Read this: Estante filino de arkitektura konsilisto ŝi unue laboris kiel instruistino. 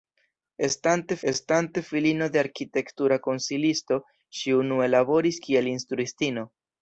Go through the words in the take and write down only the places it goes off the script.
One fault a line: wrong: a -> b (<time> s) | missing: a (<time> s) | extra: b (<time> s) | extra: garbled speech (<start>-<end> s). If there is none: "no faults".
extra: estante (1.3 s)